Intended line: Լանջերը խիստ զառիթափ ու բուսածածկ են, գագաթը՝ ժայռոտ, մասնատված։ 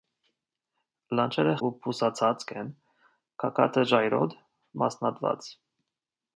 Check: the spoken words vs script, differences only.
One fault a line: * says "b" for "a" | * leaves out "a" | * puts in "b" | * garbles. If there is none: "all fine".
* leaves out "խիստ զառիթափ"